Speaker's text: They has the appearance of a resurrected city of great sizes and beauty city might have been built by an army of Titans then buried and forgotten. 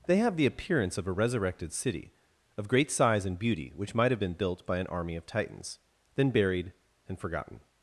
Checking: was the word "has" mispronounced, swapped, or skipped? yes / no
yes